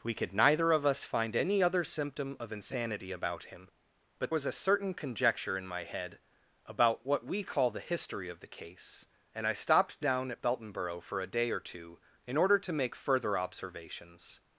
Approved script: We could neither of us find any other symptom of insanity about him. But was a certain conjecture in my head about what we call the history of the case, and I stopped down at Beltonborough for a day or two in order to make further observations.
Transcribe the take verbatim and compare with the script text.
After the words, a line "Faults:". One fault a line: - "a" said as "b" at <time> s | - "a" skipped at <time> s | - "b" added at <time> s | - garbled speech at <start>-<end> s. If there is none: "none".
We could neither of us find any other symptom of insanity about him. But was a certain conjecture in my head about what we call the history of the case, and I stopped down at Beltonborough for a day or two in order to make further observations.
Faults:
none